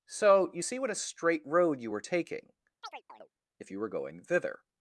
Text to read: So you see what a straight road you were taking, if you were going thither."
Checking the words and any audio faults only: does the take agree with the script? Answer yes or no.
no